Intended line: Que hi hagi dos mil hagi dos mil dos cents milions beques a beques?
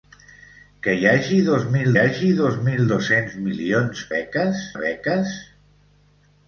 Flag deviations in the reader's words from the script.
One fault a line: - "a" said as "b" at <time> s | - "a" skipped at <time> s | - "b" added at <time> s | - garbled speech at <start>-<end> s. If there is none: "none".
none